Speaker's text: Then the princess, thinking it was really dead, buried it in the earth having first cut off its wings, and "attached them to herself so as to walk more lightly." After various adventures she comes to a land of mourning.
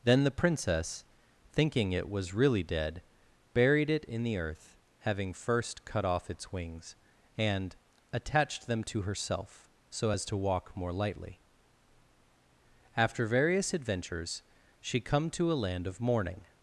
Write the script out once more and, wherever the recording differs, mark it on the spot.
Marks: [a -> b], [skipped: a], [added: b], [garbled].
Then the princess, thinking it was really dead, buried it in the earth having first cut off its wings, and "attached them to herself so as to walk more lightly." After various adventures she [comes -> come] to a land of mourning.